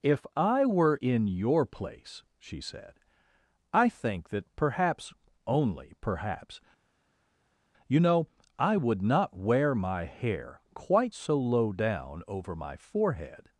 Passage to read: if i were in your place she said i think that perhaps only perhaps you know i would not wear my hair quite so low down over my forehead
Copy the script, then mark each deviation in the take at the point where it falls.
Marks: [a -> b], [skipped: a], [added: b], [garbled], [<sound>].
if i were in your place she said i think that perhaps only perhaps you know i would not wear my hair quite so low down over my forehead